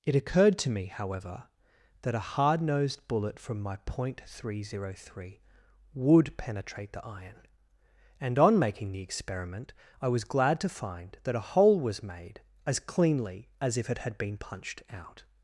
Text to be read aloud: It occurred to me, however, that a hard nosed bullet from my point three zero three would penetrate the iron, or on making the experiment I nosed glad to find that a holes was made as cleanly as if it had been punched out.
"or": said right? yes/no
no